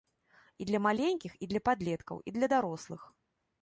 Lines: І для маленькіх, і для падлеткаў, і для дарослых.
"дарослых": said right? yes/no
yes